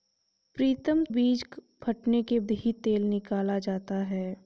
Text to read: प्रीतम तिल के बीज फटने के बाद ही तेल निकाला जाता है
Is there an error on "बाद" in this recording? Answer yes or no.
yes